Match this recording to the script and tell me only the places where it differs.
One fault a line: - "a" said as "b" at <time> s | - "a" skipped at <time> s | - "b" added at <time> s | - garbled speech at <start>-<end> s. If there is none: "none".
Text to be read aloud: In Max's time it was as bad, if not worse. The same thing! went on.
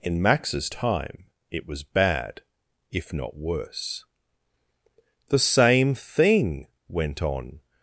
- "as" skipped at 1.8 s